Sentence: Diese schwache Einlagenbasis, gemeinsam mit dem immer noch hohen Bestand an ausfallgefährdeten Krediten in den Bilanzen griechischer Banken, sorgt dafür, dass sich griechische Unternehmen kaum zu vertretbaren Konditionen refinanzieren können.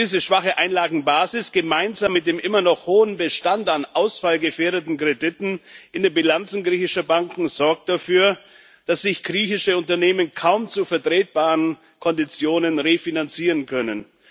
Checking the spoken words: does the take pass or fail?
pass